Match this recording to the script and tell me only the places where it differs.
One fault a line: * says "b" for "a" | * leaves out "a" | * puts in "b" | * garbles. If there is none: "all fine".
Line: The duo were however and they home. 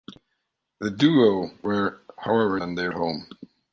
all fine